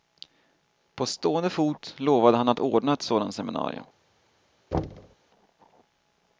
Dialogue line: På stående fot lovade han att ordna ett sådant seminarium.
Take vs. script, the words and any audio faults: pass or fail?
fail